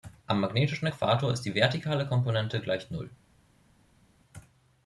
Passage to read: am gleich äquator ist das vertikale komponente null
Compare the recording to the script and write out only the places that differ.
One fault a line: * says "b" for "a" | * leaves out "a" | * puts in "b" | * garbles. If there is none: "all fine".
* says "magnetischen" for "gleich"
* says "die" for "das"
* puts in "gleich"